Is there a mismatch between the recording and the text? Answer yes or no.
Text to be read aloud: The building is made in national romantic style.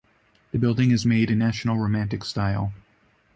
no